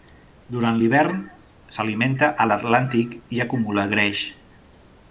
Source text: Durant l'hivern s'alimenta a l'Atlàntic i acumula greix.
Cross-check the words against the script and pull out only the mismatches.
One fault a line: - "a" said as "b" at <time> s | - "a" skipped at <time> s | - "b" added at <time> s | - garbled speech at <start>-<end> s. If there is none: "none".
none